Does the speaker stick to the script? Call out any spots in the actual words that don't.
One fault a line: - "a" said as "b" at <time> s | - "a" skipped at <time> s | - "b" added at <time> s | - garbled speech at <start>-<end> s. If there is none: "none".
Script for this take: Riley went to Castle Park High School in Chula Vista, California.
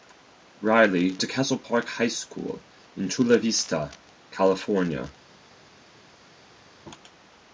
- "went" skipped at 1.2 s